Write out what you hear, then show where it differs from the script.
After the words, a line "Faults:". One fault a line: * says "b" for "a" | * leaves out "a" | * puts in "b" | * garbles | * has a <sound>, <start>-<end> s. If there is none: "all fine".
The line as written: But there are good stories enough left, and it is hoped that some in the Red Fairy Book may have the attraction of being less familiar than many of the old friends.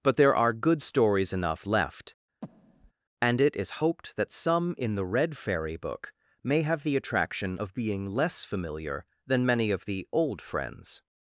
But there are good stories enough left, and it is hoped that some in the Red Fairy Book may have the attraction of being less familiar than many of the old friends.
Faults:
* has a breath, 2.4-2.9 s